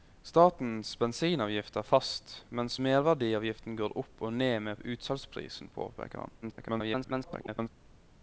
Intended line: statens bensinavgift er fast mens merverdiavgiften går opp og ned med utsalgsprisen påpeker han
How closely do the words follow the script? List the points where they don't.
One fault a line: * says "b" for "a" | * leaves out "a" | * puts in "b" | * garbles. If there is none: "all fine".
* garbles